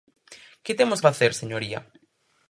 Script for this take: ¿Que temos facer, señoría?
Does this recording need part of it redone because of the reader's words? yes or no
no